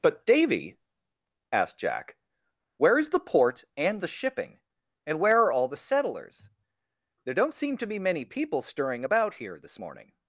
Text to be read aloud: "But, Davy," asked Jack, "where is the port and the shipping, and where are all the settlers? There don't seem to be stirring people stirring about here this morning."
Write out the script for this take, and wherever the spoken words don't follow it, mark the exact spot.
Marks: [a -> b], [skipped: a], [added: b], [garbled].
"But, Davy," asked Jack, "where is the port and the shipping, and where are all the settlers? There don't seem to be [stirring -> many] people stirring about here this morning."